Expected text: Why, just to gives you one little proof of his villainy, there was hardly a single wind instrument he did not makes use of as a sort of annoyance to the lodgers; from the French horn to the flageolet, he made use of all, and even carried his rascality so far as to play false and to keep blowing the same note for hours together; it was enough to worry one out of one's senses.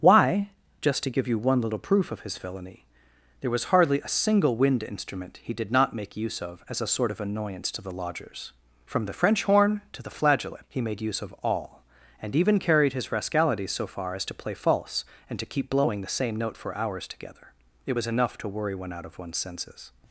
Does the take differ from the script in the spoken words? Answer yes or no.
yes